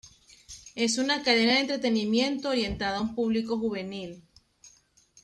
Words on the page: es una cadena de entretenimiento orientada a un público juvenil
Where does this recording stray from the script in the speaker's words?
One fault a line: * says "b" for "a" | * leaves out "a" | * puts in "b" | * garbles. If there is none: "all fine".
all fine